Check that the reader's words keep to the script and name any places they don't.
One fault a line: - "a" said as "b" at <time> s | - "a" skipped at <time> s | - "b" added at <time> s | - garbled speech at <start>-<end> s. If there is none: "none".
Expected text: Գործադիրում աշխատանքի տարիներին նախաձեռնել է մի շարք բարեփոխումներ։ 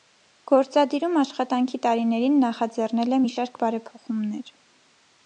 none